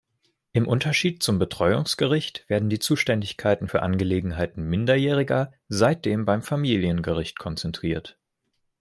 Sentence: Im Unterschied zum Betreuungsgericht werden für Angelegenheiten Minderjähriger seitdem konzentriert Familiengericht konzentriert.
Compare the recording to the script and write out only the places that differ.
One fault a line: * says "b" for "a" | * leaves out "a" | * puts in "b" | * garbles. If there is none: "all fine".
* puts in "die Zuständigkeiten"
* says "beim" for "konzentriert"